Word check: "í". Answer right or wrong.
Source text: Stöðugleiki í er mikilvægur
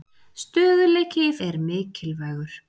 right